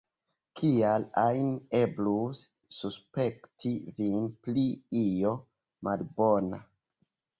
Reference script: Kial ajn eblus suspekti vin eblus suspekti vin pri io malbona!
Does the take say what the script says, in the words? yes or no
no